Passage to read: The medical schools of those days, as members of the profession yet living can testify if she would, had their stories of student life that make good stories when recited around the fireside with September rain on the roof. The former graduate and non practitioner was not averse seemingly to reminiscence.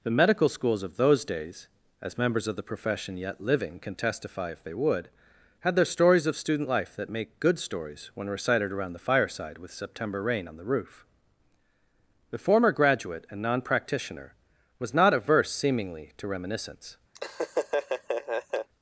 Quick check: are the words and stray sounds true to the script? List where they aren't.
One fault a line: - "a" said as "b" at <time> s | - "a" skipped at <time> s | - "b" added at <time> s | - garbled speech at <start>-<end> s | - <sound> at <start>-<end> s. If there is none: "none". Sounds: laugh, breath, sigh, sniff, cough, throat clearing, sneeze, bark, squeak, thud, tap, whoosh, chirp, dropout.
- "she" said as "they" at 4.6 s
- laugh at 17.1-18.7 s